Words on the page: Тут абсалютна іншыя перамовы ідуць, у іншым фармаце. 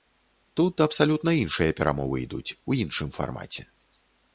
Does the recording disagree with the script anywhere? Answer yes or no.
no